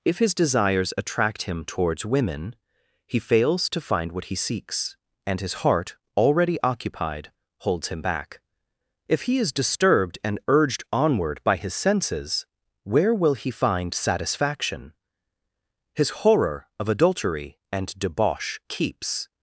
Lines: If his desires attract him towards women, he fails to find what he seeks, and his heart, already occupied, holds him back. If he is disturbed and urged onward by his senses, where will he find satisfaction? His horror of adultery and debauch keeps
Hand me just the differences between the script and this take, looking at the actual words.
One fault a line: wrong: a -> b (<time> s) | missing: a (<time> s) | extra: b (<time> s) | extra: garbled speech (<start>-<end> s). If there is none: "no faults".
no faults